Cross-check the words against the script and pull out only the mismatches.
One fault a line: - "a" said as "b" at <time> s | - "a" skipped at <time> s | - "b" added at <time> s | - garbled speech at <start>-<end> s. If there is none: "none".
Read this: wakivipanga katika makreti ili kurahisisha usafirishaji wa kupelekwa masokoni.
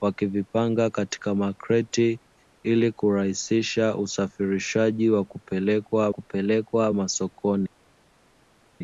- "kupelekwa" added at 6.1 s